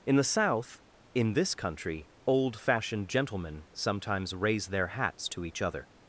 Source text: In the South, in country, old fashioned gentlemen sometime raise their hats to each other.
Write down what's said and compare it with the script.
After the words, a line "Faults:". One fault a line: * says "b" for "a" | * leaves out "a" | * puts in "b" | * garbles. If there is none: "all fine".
In the South, in this country, old fashioned gentlemen sometimes raise their hats to each other.
Faults:
* puts in "this"
* says "sometimes" for "sometime"